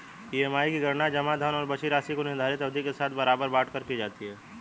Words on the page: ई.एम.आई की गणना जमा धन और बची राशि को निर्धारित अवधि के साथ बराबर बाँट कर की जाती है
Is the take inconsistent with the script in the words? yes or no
no